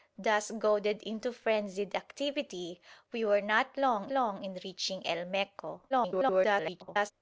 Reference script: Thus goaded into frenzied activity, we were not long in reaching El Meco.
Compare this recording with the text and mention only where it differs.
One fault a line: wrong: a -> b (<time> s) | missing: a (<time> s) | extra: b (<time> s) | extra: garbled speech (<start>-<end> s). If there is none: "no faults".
extra: long (4.1 s)
extra: garbled speech (5.9-7.1 s)